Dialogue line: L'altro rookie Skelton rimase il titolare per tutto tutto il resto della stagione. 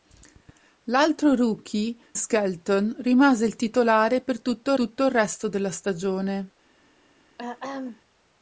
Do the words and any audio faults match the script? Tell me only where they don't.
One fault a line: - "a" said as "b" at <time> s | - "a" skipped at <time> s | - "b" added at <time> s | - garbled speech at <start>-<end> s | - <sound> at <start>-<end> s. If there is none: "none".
- throat clearing at 7.4-8.0 s